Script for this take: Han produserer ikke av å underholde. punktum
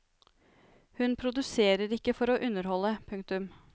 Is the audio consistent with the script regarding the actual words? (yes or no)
no